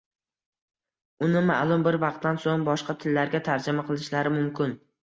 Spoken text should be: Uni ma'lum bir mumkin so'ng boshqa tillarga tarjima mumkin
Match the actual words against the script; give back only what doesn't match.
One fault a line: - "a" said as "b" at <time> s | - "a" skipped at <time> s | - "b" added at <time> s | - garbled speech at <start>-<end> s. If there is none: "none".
- "mumkin" said as "vaqtdan" at 2.0 s
- "qilishlari" added at 3.9 s